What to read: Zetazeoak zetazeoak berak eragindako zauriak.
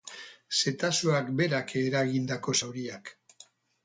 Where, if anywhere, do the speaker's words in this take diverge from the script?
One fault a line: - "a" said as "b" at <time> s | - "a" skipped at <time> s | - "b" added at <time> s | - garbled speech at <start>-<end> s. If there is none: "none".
- "zetazeoak" skipped at 1.3 s